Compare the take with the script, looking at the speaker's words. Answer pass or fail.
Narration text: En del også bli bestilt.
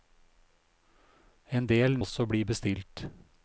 pass